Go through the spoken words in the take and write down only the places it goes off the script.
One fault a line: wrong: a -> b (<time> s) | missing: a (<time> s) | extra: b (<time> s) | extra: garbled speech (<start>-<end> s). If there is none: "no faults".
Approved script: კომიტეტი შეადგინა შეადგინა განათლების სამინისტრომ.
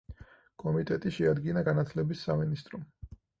missing: შეადგინა (1.7 s)